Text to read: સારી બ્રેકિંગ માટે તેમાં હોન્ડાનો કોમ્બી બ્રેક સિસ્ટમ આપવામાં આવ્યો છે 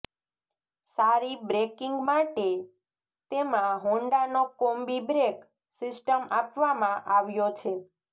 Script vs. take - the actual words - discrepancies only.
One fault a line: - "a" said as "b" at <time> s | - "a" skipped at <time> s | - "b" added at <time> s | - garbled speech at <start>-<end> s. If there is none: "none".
none